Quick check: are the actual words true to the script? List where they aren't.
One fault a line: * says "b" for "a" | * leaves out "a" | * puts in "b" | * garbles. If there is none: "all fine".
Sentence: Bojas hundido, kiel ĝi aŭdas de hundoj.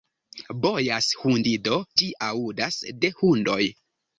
* leaves out "kiel"